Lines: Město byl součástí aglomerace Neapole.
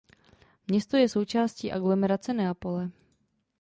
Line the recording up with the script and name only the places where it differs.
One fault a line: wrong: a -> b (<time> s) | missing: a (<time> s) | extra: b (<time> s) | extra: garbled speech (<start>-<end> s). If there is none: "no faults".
wrong: byl -> je (1.0 s)